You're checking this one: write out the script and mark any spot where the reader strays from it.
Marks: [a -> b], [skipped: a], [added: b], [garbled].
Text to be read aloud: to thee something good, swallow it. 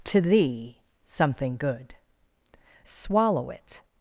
to thee something good, swallow it.